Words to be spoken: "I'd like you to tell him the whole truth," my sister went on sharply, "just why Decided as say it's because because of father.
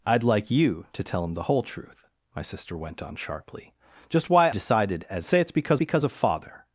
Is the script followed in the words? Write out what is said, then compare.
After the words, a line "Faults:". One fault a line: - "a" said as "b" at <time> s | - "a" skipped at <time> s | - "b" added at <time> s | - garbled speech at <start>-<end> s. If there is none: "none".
"I'd like you to tell him the whole truth," my sister went on sharply, "just why Decided as say it's because because of father.
Faults:
none